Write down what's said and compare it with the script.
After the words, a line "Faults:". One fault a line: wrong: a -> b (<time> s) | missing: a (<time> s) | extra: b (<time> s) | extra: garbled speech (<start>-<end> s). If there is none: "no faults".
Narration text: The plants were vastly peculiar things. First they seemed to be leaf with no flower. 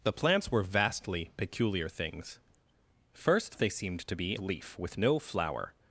The plants were vastly peculiar things. First they seemed to be leaf with no flower.
Faults:
no faults